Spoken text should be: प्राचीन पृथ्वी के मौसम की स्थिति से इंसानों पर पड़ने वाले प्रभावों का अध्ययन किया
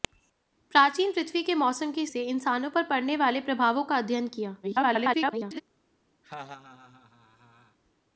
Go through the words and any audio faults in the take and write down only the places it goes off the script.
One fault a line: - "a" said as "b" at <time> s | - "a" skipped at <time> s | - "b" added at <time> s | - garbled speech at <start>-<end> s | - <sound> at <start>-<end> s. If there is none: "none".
- "स्थिति" skipped at 2.0 s
- garbled speech at 4.6-5.6 s
- laugh at 6.2-7.8 s